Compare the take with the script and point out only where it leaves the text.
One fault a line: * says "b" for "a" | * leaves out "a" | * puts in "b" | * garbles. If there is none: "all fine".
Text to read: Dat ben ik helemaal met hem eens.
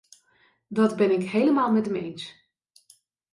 all fine